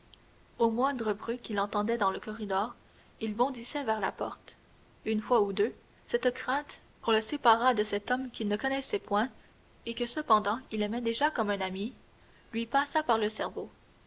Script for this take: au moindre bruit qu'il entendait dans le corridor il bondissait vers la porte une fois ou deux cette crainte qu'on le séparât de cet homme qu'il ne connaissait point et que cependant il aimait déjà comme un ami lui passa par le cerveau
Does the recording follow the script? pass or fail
pass